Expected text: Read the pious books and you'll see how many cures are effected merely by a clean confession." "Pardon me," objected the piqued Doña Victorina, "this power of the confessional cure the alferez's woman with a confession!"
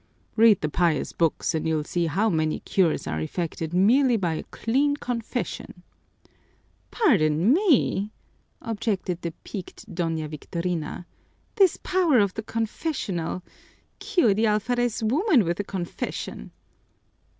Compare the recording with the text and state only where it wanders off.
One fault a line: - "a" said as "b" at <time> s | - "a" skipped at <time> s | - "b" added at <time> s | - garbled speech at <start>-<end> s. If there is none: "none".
none